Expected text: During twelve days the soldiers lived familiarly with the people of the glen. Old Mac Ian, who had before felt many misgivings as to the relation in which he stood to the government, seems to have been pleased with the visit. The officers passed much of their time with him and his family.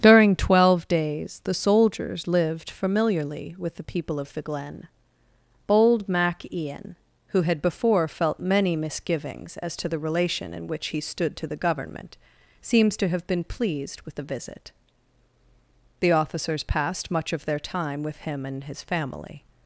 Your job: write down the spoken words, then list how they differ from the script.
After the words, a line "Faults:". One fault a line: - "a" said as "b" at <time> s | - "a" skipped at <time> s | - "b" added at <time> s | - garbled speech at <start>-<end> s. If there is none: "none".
During twelve days the soldiers lived familiarly with the people of the glen. Bold Mac Ian, who had before felt many misgivings as to the relation in which he stood to the government, seems to have been pleased with the visit. The officers passed much of their time with him and his family.
Faults:
- "Old" said as "Bold" at 5.7 s